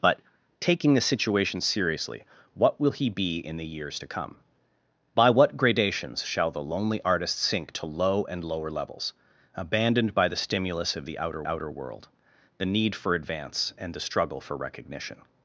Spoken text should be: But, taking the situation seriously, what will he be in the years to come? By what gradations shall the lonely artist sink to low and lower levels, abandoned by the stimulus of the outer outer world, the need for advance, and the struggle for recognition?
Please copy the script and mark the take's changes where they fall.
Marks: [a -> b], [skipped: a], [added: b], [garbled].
But, taking the situation seriously, what will he be in the years to come? By what gradations shall the lonely artist sink to low and lower levels, abandoned by the stimulus of the outer outer world, the need for advance, and the struggle for recognition?